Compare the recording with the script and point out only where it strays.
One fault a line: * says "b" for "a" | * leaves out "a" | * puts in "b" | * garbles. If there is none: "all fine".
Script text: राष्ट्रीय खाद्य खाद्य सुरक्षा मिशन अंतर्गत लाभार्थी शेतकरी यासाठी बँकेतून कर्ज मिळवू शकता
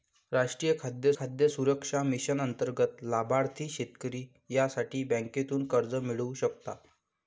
all fine